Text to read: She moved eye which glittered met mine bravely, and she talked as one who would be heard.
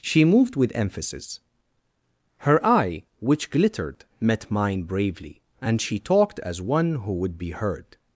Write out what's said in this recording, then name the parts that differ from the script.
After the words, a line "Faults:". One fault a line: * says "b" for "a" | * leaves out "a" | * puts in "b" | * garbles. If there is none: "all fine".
She moved with emphasis. Her eye which glittered met mine bravely, and she talked as one who would be heard.
Faults:
* puts in "with emphasis Her"